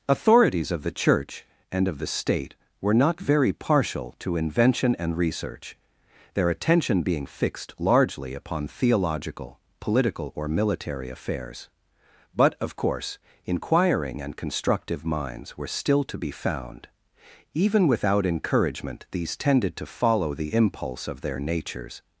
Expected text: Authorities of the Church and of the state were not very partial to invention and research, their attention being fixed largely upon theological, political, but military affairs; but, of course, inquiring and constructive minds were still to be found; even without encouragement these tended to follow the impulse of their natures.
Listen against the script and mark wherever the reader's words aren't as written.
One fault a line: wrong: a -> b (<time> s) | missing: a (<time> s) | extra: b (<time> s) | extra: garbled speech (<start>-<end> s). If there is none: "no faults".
wrong: but -> or (10.3 s)